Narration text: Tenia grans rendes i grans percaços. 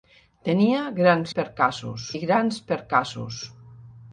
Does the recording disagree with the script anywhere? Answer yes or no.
yes